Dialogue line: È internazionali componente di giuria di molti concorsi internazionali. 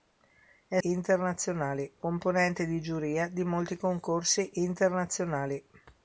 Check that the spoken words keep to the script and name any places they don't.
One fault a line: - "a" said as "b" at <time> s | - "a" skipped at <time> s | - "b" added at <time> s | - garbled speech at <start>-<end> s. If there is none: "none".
none